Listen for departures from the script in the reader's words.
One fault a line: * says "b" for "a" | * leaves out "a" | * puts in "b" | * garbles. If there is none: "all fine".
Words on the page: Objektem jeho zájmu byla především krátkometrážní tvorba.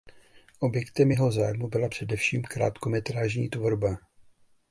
all fine